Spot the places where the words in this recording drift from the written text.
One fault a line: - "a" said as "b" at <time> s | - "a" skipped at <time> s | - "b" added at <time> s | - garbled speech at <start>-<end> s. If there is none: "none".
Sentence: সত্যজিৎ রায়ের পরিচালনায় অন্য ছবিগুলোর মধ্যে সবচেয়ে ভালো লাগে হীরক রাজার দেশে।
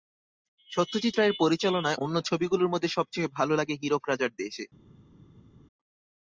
none